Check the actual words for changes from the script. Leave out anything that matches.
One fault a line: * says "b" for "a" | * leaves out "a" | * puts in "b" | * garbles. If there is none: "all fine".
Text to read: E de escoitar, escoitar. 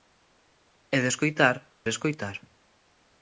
all fine